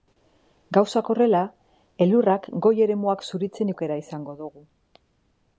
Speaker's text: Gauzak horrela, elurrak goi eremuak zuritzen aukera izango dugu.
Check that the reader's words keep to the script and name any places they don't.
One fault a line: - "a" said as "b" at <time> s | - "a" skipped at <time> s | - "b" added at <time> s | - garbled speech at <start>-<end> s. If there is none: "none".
none